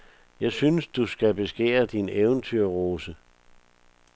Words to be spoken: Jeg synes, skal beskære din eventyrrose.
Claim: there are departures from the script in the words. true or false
true